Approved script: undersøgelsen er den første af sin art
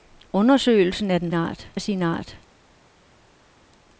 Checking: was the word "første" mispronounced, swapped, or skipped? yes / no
yes